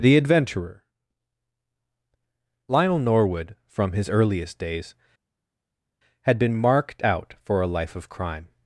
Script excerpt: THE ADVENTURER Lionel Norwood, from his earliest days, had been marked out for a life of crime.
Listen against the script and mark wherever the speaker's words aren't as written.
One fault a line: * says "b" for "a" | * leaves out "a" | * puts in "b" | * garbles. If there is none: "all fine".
all fine